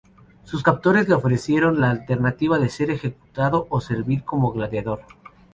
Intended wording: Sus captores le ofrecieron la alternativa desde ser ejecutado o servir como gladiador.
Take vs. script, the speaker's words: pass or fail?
fail